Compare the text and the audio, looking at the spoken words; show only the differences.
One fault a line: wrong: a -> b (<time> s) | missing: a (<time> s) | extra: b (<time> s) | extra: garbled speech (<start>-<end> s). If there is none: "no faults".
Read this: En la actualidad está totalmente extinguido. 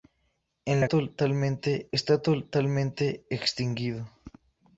wrong: actualidad -> totalmente (0.9 s)